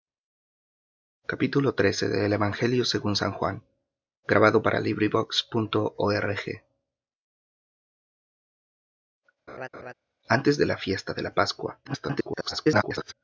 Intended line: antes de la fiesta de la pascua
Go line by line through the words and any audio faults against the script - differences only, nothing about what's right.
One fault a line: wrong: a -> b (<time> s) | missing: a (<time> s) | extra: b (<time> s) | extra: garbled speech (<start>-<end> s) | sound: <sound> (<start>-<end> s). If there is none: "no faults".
sound: laugh (9.5-9.9 s)
extra: garbled speech (11.8-13.1 s)